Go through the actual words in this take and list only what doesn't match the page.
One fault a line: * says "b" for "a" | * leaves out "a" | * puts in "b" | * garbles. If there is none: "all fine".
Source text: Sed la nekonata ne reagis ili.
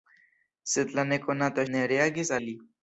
all fine